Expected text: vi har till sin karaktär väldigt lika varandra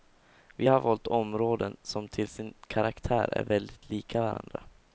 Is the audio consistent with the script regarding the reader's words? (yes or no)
no